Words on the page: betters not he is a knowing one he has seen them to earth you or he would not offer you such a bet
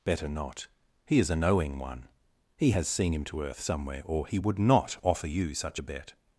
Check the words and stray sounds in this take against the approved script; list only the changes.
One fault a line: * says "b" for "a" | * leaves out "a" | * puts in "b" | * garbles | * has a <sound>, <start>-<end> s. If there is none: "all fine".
* says "better" for "betters"
* says "him" for "them"
* says "somewhere" for "you"